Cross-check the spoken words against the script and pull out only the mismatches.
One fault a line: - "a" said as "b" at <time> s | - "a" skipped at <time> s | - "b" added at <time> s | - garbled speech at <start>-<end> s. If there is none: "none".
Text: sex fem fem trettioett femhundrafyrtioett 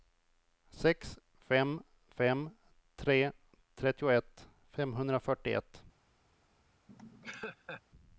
- "tre" added at 2.9 s